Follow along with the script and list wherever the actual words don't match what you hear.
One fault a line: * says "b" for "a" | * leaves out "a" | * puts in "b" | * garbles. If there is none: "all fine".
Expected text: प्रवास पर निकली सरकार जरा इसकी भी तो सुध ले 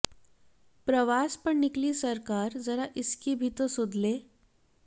all fine